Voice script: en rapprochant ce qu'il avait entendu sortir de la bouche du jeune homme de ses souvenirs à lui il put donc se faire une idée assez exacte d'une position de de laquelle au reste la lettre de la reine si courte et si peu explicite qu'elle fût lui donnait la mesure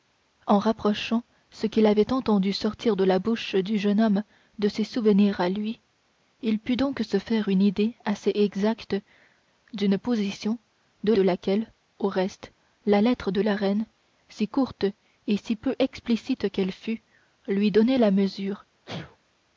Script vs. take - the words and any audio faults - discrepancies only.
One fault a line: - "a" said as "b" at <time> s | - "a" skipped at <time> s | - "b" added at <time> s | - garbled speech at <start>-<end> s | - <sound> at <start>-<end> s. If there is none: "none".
- sneeze at 18.8-19.2 s